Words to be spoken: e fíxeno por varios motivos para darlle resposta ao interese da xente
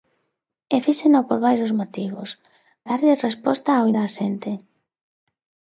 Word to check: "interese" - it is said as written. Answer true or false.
false